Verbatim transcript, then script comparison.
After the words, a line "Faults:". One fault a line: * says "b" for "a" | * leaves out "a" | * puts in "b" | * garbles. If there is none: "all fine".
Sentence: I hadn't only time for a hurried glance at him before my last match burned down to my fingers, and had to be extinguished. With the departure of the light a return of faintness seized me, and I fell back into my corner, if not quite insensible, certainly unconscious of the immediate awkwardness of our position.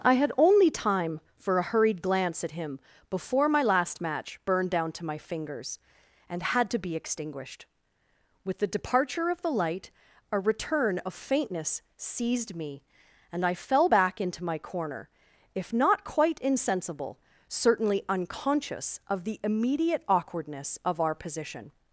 I had only time for a hurried glance at him before my last match burned down to my fingers, and had to be extinguished. With the departure of the light a return of faintness seized me, and I fell back into my corner, if not quite insensible, certainly unconscious of the immediate awkwardness of our position.
Faults:
* says "had" for "hadn't"